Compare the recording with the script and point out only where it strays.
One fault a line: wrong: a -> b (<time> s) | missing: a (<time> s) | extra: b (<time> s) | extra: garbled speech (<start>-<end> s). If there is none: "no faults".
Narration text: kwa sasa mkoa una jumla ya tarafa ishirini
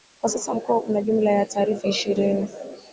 no faults